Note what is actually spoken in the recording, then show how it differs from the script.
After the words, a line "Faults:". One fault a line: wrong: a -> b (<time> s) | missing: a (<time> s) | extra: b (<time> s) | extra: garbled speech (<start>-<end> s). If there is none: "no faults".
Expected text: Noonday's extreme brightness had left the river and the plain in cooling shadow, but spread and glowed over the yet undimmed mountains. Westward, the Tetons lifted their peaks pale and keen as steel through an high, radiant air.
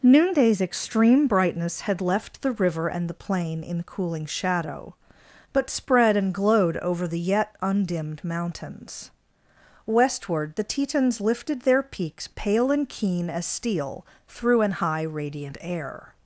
Noonday's extreme brightness had left the river and the plain in cooling shadow, but spread and glowed over the yet undimmed mountains. Westward, the Tetons lifted their peaks pale and keen as steel through an high, radiant air.
Faults:
no faults